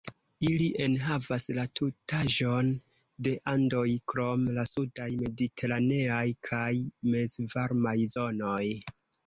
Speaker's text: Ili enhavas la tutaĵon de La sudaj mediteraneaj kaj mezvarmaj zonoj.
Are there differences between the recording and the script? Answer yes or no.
yes